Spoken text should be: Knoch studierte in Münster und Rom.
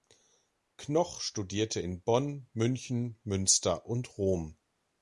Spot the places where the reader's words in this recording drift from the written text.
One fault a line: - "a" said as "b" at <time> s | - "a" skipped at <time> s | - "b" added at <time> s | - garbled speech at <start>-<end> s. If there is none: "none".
- "Bonn München" added at 2.0 s